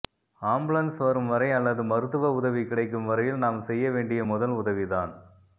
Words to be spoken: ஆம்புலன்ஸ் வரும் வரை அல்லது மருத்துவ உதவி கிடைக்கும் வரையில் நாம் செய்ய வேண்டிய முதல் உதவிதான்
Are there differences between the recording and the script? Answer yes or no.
no